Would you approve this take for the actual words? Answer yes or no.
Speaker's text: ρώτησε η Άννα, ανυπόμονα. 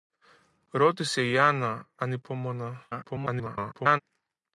no